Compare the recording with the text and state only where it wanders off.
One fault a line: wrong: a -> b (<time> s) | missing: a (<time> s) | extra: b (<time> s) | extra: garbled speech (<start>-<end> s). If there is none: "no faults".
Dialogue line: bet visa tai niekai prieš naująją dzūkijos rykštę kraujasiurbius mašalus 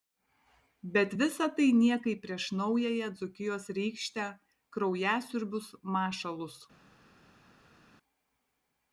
no faults